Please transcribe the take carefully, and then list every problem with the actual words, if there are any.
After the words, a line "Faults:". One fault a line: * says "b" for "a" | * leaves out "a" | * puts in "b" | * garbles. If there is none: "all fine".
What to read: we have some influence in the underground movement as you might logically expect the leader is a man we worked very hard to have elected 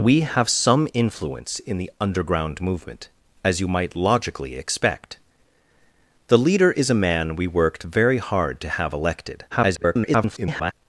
we have some influence in the underground movement as you might logically expect the leader is a man we worked very hard to have elected [garbled]
Faults:
* garbles